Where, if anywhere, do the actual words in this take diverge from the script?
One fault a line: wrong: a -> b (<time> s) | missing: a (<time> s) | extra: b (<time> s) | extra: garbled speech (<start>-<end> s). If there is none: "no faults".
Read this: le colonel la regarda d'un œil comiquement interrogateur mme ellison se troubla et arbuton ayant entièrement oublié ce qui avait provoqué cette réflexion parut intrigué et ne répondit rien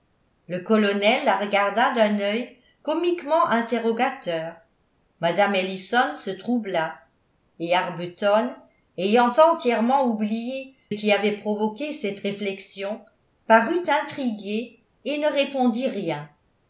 missing: ce (10.8 s)